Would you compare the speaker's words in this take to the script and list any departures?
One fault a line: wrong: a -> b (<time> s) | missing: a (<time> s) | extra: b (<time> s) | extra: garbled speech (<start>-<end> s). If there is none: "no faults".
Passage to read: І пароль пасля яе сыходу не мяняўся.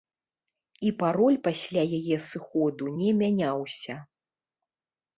no faults